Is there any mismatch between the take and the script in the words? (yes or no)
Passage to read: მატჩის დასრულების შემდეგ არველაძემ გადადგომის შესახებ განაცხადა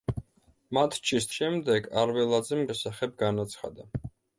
yes